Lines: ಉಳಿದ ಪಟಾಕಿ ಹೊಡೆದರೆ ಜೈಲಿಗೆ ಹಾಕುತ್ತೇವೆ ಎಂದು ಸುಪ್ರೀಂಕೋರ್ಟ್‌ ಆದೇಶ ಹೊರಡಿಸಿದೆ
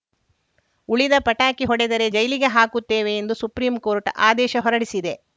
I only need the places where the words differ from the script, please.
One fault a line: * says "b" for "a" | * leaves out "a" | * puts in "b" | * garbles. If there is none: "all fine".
all fine